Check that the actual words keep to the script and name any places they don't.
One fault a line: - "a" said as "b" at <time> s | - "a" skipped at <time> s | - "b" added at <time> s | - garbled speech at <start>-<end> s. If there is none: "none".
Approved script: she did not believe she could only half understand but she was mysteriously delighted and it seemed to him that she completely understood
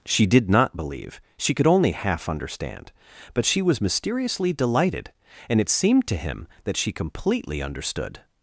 none